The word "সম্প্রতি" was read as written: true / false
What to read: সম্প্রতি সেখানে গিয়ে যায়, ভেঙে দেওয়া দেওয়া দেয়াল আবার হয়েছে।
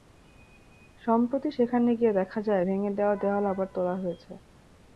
true